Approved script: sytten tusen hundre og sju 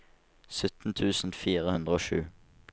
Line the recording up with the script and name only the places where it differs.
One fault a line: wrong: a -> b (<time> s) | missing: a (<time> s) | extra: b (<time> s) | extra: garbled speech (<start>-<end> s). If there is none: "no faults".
extra: fire (1.4 s)